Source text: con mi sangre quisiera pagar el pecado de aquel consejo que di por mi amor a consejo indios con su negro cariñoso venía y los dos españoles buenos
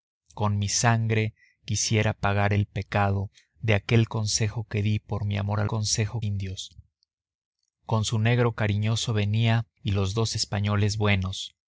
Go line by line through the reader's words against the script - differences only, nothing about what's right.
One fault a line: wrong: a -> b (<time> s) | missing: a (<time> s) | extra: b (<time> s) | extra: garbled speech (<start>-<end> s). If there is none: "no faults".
no faults